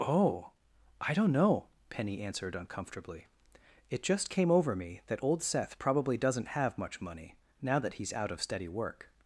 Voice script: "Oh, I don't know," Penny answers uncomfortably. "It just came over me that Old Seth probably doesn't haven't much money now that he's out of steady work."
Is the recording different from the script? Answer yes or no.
yes